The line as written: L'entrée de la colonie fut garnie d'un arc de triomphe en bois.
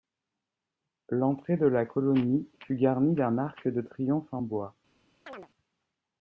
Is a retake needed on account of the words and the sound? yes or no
yes